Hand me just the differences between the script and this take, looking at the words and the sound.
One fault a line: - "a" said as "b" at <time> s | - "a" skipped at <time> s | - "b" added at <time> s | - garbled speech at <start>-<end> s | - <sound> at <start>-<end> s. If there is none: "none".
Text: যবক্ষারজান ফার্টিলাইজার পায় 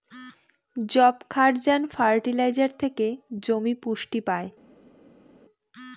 - "থেকে জমি পুষ্টি" added at 2.8 s